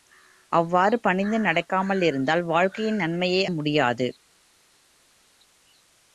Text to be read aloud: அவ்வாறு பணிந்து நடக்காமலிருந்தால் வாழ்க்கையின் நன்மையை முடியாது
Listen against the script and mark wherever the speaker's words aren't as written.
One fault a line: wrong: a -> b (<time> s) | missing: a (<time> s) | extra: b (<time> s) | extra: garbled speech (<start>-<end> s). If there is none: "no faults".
no faults